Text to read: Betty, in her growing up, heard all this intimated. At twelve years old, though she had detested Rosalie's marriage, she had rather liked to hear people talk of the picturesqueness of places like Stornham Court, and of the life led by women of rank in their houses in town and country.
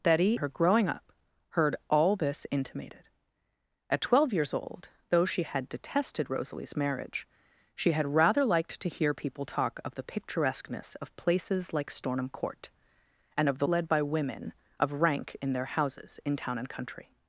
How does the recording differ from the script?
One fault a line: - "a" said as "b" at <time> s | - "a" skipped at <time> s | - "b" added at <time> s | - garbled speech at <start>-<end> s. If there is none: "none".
- "in" skipped at 0.3 s
- "life" skipped at 13.7 s